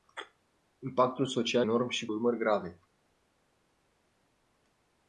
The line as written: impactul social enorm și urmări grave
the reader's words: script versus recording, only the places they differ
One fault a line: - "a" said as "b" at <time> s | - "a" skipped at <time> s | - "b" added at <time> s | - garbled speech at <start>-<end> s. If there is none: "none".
none